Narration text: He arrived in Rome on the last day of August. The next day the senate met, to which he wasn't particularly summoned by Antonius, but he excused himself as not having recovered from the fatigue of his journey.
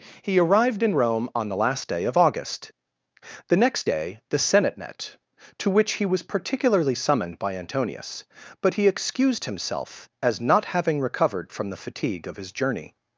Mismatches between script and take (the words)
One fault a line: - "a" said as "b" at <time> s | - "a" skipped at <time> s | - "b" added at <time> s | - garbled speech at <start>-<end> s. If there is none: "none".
- "wasn't" said as "was" at 6.0 s